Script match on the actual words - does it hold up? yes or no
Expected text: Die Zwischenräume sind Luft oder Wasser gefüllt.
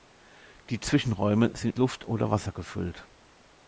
yes